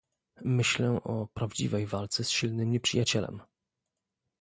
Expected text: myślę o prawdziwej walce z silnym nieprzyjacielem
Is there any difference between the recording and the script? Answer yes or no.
no